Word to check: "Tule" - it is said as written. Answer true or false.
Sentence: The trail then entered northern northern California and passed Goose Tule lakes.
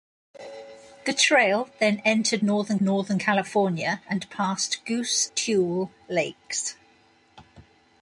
true